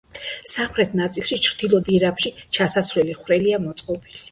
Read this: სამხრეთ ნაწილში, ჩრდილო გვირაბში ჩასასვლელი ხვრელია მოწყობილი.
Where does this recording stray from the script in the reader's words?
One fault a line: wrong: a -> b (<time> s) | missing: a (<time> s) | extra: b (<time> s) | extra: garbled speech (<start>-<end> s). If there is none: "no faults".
no faults